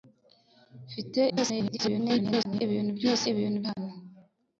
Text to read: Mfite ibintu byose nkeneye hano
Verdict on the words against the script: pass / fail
fail